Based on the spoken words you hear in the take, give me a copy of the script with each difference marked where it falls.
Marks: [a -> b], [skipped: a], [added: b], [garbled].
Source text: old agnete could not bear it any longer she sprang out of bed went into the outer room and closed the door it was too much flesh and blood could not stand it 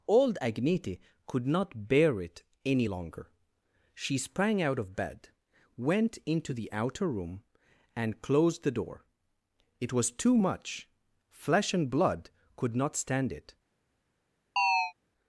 old agnete could not bear it any longer she sprang out of bed went into the outer room and closed the door it was too much flesh and blood could not stand it